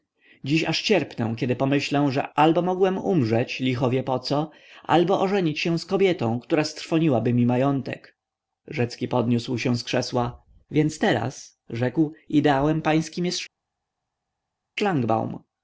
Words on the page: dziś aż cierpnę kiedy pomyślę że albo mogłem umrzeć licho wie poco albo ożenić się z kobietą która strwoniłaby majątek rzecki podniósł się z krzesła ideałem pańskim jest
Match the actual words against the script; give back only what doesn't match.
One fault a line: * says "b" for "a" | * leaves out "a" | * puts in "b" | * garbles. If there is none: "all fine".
* puts in "mi"
* puts in "więc teraz rzekł"